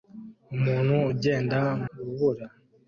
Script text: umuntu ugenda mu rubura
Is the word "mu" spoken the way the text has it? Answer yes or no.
no